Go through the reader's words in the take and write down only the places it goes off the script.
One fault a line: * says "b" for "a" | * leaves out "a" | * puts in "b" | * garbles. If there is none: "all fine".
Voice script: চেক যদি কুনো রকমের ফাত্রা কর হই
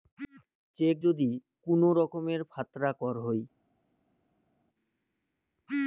all fine